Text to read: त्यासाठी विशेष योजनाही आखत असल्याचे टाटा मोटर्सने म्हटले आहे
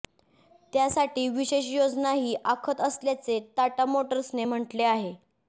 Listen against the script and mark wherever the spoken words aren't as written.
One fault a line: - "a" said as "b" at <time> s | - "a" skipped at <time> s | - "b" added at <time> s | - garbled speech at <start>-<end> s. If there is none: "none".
none